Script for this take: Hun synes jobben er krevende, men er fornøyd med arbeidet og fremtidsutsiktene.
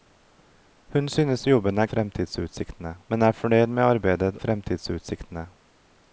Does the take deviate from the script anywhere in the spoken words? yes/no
yes